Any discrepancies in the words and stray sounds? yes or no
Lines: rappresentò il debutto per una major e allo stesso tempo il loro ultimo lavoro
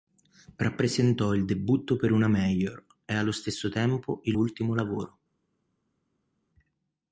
yes